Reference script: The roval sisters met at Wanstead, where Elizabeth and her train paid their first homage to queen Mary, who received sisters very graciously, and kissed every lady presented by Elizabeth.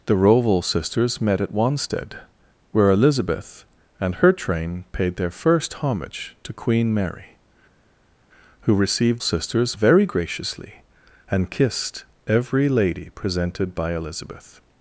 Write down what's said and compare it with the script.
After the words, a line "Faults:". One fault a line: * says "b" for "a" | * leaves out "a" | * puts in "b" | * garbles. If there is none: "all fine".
The roval sisters met at Wanstead, where Elizabeth and her train paid their first homage to queen Mary, who received sisters very graciously, and kissed every lady presented by Elizabeth.
Faults:
all fine